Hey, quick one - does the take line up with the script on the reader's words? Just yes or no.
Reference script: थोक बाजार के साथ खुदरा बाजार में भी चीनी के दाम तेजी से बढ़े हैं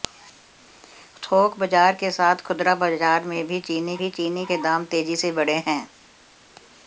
no